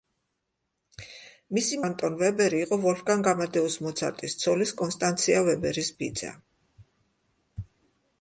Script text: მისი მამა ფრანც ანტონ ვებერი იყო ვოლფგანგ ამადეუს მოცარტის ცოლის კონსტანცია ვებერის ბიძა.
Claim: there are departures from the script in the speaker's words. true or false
true